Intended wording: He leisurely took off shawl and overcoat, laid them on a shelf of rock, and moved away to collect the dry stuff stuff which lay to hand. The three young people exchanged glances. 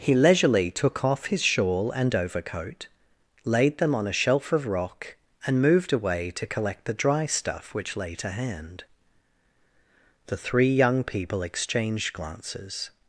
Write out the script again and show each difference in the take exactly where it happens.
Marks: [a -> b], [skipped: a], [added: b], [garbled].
He leisurely took off [added: his] shawl and overcoat, laid them on a shelf of rock, and moved away to collect the dry stuff [skipped: stuff] which lay to hand. The three young people exchanged glances.